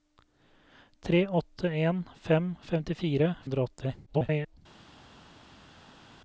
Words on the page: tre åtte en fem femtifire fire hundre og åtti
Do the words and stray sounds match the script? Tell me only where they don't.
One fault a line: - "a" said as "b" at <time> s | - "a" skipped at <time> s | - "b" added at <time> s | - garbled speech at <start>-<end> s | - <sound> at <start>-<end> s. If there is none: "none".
- "fire" skipped at 3.3 s
- garbled speech at 4.1-4.6 s